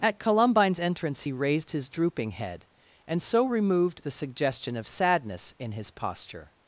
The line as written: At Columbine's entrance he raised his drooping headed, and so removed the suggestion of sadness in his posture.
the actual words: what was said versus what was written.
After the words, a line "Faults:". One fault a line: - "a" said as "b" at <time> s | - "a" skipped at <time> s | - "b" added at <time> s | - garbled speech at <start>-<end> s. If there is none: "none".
At Columbine's entrance he raised his drooping head, and so removed the suggestion of sadness in his posture.
Faults:
- "headed" said as "head" at 2.3 s